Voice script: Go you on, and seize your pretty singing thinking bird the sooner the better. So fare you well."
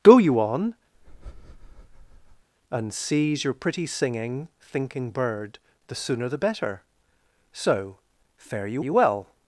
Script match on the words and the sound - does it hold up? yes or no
no